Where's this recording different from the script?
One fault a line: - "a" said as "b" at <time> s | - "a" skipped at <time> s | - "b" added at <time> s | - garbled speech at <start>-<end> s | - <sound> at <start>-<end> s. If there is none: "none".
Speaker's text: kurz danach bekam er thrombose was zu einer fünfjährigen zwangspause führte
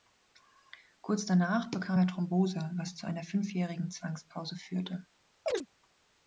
- chirp at 5.5-5.7 s